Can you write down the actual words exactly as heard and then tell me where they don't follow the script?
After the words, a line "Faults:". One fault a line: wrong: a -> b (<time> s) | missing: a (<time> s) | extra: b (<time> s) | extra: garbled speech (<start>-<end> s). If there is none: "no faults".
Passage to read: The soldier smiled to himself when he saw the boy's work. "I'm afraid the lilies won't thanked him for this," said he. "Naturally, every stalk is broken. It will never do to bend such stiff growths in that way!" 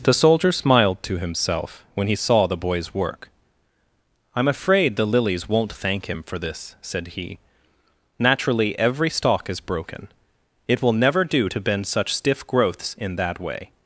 The soldier smiled to himself when he saw the boy's work. "I'm afraid the lilies won't thank him for this," said he. "Naturally, every stalk is broken. It will never do to bend such stiff growths in that way!"
Faults:
wrong: thanked -> thank (5.7 s)